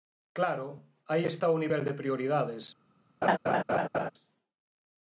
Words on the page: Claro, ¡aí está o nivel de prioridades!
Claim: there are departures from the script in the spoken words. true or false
false